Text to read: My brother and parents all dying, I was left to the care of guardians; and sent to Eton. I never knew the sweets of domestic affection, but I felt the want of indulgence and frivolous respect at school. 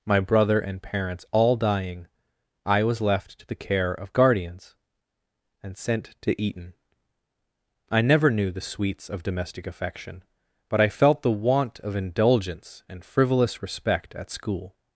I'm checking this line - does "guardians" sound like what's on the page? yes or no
yes